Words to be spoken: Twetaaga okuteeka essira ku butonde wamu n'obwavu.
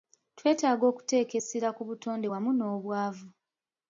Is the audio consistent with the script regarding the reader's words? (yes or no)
yes